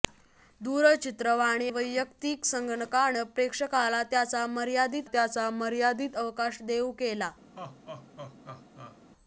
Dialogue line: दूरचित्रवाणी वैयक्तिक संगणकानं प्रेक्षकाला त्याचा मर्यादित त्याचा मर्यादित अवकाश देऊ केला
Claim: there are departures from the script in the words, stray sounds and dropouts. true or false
true